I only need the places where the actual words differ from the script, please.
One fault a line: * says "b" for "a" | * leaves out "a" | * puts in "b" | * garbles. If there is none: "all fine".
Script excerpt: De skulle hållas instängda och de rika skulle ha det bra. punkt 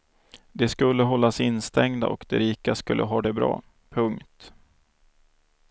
all fine